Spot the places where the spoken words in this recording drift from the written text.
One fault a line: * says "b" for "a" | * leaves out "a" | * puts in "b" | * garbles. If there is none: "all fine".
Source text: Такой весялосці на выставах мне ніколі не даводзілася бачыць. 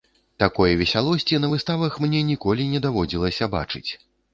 all fine